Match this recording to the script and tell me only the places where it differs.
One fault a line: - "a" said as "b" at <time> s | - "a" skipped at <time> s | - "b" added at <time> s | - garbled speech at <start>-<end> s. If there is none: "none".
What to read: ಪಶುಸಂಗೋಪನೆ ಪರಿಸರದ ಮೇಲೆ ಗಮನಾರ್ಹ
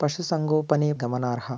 - "ಪರಿಸರದ ಮೇಲೆ" skipped at 0.9 s